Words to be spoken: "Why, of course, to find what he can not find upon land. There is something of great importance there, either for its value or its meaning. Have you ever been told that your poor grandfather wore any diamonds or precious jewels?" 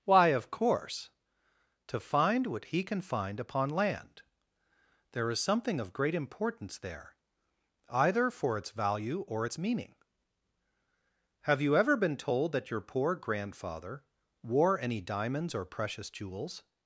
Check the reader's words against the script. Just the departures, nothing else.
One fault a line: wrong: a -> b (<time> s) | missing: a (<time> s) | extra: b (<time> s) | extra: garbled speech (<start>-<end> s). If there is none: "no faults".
missing: not (3.0 s)